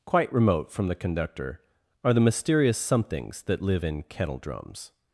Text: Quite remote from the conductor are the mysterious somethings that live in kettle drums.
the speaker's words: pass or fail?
pass